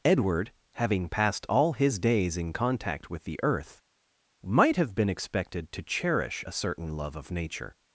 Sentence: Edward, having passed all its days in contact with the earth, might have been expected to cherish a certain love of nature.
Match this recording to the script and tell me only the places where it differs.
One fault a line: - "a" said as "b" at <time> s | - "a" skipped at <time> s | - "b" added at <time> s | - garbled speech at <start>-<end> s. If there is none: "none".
- "its" said as "his" at 1.7 s